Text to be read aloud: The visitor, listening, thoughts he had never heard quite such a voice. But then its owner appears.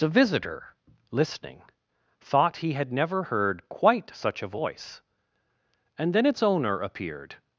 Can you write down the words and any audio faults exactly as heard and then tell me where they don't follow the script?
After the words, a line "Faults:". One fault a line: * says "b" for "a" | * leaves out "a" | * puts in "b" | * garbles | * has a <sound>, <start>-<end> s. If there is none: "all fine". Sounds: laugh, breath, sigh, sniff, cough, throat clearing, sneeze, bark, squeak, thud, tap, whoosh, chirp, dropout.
The visitor, listening, thought he had never heard quite such a voice. And then its owner appeared.
Faults:
* says "thought" for "thoughts"
* says "And" for "But"
* says "appeared" for "appears"